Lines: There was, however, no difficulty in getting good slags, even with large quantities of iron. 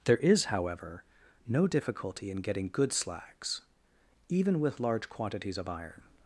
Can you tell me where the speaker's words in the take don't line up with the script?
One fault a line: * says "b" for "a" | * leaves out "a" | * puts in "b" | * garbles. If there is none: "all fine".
* says "is" for "was"